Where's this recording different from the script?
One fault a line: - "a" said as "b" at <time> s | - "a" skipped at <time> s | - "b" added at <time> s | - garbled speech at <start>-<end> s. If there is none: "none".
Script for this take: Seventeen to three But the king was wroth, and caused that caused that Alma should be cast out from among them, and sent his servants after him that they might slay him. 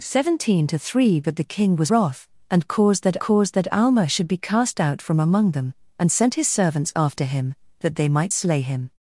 none